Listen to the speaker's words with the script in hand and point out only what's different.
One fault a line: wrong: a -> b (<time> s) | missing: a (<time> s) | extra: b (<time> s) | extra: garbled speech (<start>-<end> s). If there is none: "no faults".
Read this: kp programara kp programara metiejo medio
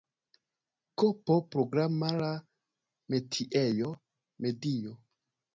missing: kp programara (2.3 s)